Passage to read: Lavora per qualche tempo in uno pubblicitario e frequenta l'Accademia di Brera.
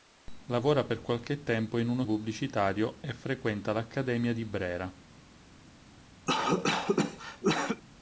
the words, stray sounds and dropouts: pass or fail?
fail